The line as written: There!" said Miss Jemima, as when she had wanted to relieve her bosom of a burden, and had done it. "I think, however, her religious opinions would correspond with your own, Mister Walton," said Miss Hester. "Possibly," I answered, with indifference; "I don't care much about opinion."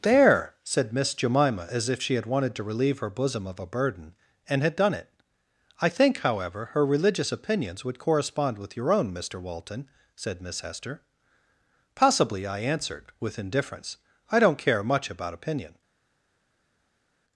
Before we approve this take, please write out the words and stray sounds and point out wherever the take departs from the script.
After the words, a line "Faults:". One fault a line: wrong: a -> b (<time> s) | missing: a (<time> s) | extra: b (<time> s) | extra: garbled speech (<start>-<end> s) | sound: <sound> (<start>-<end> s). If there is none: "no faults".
There!" said Miss Jemima, as if she had wanted to relieve her bosom of a burden, and had done it. "I think, however, her religious opinions would correspond with your own, Mister Walton," said Miss Hester. "Possibly," I answered, with indifference; "I don't care much about opinion."
Faults:
wrong: when -> if (1.9 s)